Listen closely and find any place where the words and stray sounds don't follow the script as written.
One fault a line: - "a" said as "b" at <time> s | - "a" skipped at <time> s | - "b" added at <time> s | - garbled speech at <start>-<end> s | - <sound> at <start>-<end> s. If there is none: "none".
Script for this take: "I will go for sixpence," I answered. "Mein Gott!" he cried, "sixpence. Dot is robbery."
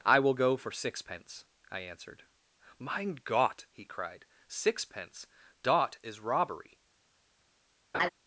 - laugh at 7.9-8.1 s